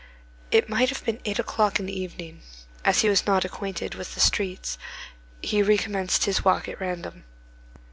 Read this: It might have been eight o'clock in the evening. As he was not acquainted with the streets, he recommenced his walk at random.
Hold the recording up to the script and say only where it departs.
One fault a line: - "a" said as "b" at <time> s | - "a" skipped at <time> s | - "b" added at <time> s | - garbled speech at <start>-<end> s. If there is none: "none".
none